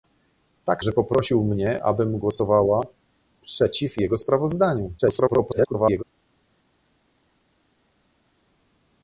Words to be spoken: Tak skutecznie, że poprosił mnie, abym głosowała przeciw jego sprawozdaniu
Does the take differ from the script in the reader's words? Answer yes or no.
yes